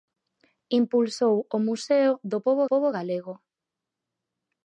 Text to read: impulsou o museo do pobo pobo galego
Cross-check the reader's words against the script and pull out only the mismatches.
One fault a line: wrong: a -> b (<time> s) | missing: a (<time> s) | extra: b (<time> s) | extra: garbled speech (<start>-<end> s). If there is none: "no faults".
no faults